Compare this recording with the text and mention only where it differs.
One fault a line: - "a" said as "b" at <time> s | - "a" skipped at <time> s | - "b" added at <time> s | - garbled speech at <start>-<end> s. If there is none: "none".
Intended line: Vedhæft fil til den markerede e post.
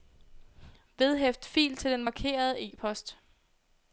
none